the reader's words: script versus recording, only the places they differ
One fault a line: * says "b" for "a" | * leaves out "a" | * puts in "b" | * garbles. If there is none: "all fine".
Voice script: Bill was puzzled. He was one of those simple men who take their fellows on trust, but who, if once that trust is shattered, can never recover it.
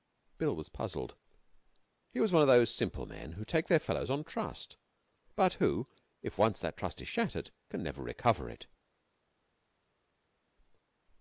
all fine